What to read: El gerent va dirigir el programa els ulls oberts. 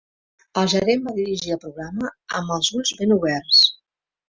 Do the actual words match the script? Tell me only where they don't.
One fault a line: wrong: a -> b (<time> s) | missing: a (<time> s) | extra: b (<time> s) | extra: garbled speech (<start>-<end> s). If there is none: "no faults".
extra: amb (2.4 s)
extra: ben (3.0 s)